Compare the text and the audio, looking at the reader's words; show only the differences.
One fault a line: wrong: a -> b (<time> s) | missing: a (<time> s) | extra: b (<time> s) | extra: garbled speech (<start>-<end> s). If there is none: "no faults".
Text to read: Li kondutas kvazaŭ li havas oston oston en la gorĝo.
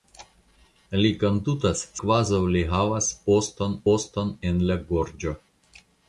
no faults